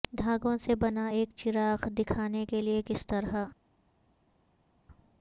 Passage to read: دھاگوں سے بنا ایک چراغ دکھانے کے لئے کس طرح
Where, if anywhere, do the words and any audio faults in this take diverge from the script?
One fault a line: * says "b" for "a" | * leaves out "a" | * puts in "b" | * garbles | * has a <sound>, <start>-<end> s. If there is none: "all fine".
all fine